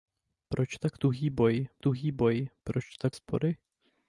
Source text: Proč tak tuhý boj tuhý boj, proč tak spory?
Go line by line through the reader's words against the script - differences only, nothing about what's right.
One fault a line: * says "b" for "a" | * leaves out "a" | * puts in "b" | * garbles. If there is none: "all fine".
all fine